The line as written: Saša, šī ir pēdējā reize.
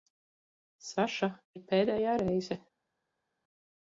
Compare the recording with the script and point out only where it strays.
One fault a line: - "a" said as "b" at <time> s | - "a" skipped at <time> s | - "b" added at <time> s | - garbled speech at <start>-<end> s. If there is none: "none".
- "šī" skipped at 1.3 s